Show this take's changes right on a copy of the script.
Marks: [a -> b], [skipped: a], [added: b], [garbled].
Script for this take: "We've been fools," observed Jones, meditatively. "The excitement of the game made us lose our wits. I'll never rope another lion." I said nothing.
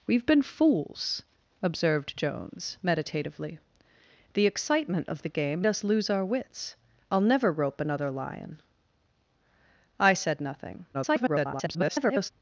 "We've been fools," observed Jones, meditatively. "The excitement of the game [skipped: made] us lose our wits. I'll never rope another lion." I said nothing. [garbled]